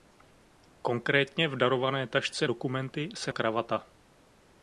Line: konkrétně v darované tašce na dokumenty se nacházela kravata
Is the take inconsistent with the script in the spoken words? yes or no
yes